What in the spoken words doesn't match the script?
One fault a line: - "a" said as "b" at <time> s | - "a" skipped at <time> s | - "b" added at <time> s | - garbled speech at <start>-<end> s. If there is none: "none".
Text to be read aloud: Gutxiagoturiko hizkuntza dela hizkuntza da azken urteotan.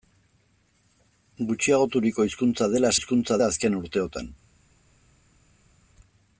none